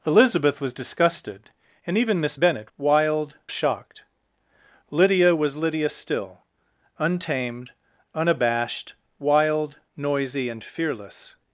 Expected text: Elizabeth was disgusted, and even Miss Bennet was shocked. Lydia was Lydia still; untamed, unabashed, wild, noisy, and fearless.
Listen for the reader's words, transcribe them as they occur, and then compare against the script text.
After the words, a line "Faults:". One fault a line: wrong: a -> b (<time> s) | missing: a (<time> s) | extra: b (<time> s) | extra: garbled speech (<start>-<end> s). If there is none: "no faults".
Elizabeth was disgusted, and even Miss Bennet wild shocked. Lydia was Lydia still; untamed, unabashed, wild, noisy, and fearless.
Faults:
wrong: was -> wild (2.8 s)